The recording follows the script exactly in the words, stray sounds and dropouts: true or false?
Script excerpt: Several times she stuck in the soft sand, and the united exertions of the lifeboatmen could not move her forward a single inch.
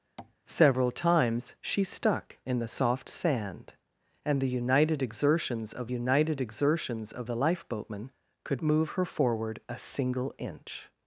false